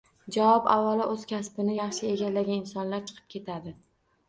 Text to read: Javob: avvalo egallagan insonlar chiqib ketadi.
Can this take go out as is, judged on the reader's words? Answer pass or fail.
fail